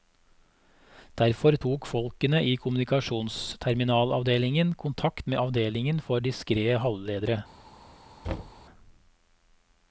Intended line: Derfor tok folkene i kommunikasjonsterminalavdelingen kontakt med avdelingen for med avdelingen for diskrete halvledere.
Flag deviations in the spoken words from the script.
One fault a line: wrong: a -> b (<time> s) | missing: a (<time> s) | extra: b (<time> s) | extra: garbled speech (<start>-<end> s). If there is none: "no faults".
missing: med avdelingen for (6.3 s)